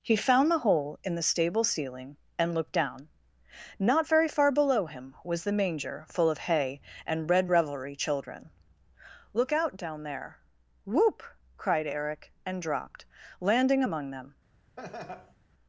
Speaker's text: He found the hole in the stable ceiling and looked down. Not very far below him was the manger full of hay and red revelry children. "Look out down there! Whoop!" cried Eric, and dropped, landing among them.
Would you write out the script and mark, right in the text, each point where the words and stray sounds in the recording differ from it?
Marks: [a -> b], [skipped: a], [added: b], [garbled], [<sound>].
He found the hole in the stable ceiling and looked down. Not very far below him was the manger full of hay and red revelry children. "Look out down there! Whoop!" cried Eric, and dropped, landing among them. [laugh]